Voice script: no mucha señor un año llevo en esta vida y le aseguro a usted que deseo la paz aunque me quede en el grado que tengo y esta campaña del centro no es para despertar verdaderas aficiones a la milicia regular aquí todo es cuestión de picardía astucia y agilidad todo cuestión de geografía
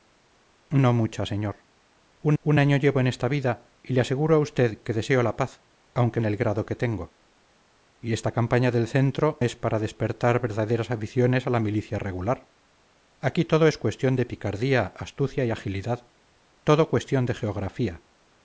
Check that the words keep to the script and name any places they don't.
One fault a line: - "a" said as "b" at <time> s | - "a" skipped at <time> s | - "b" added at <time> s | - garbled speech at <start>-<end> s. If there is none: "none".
- "un" added at 2.4 s
- "me quede" skipped at 6.2 s
- "no" skipped at 9.4 s